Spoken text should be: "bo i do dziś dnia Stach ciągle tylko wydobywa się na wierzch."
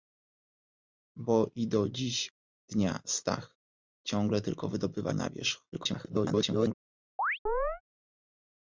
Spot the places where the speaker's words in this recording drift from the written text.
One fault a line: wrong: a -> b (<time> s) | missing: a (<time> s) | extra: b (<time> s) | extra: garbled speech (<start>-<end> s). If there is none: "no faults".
missing: się (5.1 s)
extra: garbled speech (5.7-6.7 s)